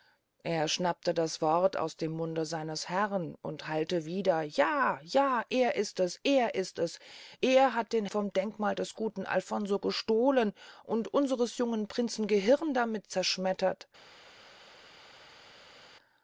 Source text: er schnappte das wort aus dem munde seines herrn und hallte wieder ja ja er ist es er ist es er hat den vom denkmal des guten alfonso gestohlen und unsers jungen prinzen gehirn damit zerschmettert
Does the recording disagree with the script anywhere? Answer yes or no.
no